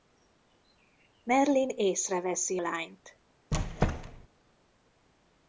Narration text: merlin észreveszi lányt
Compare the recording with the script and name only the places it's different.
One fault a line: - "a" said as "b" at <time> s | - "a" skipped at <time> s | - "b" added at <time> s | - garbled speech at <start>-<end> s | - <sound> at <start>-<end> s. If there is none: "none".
- squeak at 3.5-4.3 s